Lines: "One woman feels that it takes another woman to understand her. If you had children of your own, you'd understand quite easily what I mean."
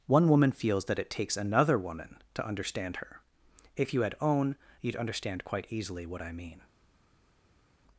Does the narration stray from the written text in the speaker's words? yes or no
yes